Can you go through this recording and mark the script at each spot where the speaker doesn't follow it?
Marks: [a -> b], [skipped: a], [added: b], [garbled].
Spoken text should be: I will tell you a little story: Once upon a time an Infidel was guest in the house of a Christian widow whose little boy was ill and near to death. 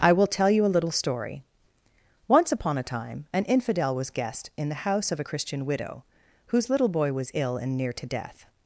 I will tell you a little story: Once upon a time an Infidel was guest in the house of a Christian widow whose little boy was ill and near to death.